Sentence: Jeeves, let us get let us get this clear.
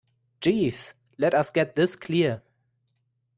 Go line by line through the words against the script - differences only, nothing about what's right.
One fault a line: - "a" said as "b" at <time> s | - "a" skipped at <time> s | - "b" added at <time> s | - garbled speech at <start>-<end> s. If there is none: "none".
- "let us get" skipped at 1.8 s